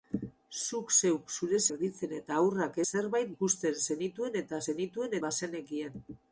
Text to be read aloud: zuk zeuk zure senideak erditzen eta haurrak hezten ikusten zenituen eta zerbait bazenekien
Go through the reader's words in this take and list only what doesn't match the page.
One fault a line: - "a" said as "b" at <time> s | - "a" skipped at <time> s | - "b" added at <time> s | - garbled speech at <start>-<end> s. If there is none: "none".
- "senideak" skipped at 1.6 s
- "hezten" said as "zerbait" at 2.9 s
- "zerbait" said as "zenituen" at 4.7 s